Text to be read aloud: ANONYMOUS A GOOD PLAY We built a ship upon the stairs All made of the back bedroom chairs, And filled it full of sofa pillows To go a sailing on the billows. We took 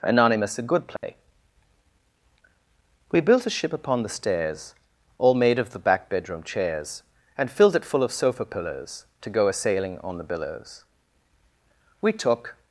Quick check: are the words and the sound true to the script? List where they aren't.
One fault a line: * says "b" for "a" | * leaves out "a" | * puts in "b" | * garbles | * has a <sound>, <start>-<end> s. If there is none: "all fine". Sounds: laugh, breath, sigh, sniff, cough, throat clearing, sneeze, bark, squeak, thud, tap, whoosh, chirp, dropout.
* has a dropout, 1.0-1.0 s